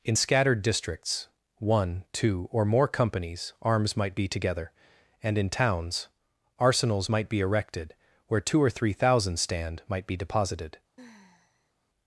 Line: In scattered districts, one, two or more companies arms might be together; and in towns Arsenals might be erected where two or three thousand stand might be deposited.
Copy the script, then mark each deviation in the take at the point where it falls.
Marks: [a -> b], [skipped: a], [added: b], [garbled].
In scattered districts, one, two or more companies arms might be together; and in towns Arsenals might be erected where two or three thousand stand might be deposited.